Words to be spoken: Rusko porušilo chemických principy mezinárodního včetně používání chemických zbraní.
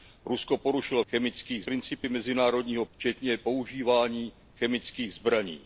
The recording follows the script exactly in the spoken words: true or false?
true